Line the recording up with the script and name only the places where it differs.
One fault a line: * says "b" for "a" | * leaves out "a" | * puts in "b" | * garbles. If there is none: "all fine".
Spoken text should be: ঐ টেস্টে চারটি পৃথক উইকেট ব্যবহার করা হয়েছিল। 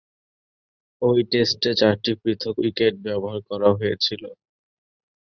all fine